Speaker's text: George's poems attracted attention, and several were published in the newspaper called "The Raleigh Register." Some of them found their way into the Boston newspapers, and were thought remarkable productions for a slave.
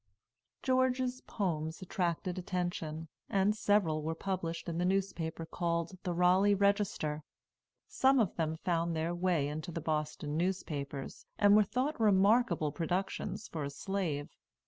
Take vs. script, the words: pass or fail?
pass